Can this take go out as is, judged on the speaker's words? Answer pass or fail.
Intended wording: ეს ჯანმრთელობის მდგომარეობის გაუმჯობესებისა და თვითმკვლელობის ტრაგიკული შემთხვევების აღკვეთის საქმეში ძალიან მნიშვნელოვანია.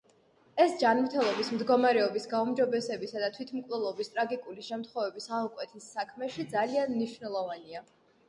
pass